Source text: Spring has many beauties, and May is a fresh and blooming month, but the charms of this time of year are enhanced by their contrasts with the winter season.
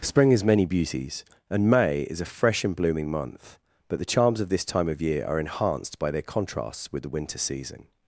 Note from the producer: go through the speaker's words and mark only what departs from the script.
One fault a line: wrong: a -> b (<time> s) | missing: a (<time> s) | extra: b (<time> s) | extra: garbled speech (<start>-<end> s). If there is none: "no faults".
no faults